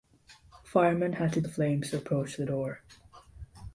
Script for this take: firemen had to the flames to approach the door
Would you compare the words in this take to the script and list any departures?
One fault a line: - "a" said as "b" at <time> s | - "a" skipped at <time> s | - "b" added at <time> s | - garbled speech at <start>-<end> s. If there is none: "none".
none